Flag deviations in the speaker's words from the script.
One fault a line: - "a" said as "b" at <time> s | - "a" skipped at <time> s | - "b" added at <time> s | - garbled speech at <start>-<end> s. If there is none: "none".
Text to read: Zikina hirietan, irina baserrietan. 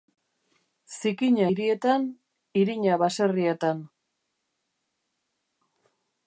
none